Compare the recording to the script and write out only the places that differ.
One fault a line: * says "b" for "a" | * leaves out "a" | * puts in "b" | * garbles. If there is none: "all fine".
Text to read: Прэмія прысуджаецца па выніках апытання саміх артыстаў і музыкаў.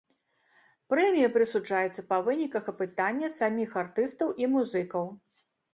all fine